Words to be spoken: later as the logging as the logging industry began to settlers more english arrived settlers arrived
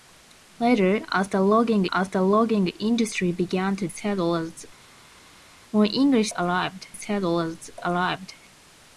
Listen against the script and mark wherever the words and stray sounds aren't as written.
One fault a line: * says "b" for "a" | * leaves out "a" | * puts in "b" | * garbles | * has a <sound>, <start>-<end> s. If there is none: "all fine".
all fine